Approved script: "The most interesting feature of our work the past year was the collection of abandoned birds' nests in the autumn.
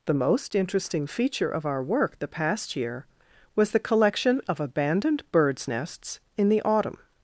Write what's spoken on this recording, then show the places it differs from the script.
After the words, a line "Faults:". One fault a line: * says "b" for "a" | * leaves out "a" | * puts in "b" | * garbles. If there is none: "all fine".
"The most interesting feature of our work the past year was the collection of abandoned birds' nests in the autumn.
Faults:
all fine